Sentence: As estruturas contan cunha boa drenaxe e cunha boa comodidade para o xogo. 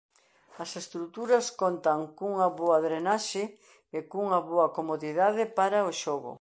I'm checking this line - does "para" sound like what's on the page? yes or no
yes